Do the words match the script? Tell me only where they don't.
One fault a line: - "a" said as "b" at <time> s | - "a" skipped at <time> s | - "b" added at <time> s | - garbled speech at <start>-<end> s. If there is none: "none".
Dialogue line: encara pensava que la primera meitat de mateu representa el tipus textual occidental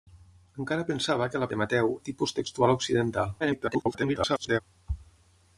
- "primera meitat" skipped at 1.5 s
- "representa" skipped at 1.9 s
- garbled speech at 3.4-4.6 s